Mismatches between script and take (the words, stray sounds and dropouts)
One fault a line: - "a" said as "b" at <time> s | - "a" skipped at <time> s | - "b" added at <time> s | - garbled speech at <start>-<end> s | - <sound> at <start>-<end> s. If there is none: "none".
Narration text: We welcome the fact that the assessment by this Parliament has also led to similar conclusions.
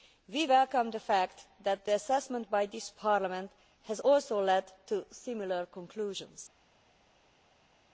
none